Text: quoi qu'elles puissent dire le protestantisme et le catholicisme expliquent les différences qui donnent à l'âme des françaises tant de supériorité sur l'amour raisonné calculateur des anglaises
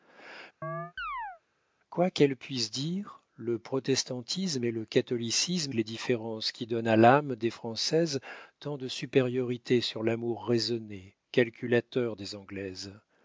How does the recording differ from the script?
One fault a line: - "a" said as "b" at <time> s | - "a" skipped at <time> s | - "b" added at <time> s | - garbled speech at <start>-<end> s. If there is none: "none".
- "expliquent" skipped at 5.7 s